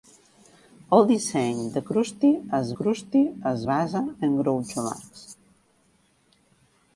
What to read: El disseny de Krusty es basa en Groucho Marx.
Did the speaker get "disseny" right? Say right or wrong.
right